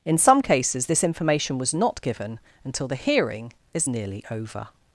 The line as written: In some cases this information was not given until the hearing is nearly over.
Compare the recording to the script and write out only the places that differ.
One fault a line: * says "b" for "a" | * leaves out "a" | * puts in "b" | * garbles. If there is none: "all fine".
all fine